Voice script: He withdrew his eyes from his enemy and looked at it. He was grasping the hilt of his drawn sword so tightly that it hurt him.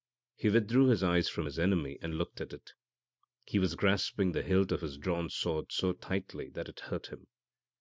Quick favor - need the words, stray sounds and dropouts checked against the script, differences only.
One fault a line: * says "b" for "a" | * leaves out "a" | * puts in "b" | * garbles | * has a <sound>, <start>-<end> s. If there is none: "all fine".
all fine